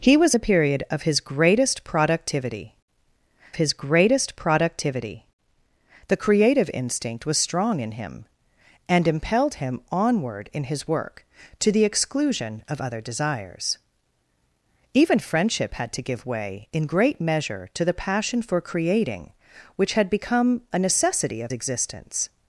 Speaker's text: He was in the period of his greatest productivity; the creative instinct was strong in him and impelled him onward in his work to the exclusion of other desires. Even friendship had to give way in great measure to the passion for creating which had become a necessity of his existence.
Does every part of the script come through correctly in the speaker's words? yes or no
no